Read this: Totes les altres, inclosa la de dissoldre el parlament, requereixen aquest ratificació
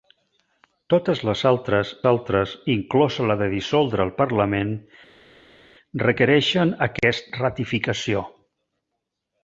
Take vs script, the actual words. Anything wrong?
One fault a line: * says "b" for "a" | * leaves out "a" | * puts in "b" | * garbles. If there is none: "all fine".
* puts in "altres"